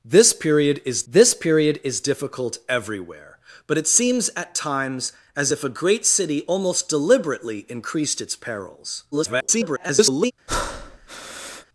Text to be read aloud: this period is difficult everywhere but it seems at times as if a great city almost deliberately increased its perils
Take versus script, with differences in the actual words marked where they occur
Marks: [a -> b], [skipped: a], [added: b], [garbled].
this period is [added: this period is] difficult everywhere but it seems at times as if a great city almost deliberately increased its perils [garbled]